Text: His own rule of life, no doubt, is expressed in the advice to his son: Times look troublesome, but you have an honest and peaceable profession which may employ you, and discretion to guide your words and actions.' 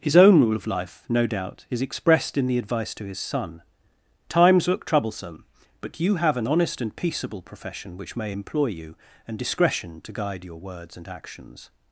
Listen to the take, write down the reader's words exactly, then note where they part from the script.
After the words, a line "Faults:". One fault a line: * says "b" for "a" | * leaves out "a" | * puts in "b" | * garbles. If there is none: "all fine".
His own rule of life, no doubt, is expressed in the advice to his son: Times look troublesome, but you have an honest and peaceable profession which may employ you, and discretion to guide your words and actions.'
Faults:
all fine